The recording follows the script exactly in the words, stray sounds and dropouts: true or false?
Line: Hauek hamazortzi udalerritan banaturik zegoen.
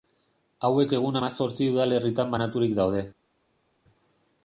false